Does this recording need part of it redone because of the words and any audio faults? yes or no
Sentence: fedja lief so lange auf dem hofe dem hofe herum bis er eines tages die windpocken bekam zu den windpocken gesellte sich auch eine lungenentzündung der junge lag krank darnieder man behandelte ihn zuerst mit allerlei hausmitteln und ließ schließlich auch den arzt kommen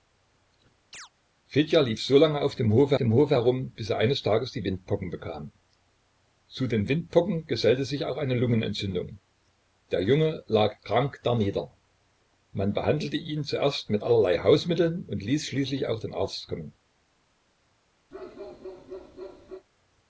yes